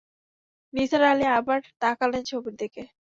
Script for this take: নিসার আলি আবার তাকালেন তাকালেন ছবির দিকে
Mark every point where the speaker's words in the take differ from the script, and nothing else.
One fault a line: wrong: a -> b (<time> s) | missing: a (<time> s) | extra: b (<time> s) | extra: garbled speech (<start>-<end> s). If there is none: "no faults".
missing: তাকালেন (2.2 s)